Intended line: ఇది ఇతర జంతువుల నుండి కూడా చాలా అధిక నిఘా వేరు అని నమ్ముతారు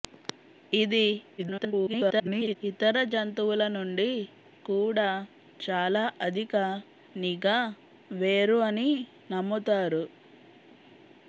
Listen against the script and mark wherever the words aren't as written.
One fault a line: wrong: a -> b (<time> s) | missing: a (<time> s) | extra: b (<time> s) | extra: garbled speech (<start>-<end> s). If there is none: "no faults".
extra: garbled speech (1.4-2.6 s)